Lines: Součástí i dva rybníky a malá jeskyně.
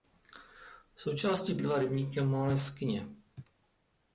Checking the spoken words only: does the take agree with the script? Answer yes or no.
yes